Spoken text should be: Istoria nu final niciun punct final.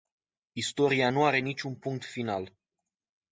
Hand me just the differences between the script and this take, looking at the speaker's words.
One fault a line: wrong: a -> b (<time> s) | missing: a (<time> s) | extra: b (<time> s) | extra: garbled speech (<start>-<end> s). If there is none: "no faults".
wrong: final -> are (1.2 s)